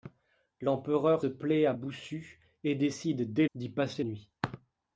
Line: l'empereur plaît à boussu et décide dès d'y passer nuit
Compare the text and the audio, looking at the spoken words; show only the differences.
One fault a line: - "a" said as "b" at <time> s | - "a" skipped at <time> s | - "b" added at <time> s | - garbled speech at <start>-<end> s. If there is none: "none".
none